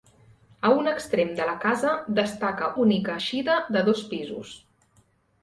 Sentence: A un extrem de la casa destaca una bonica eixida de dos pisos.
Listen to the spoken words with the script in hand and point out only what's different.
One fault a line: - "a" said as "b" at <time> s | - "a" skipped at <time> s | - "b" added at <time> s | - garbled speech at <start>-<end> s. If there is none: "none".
- "una" skipped at 2.7 s